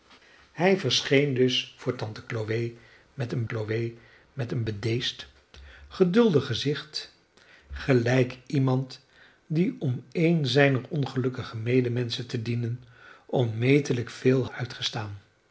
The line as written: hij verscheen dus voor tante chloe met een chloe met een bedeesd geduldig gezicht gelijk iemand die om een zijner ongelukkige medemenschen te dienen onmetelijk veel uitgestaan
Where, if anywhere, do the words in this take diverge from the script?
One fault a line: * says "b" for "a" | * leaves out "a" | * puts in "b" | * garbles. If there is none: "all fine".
all fine